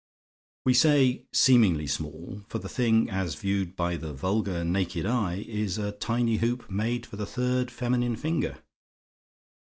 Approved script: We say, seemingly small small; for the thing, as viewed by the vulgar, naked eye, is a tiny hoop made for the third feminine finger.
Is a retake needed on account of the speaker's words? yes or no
yes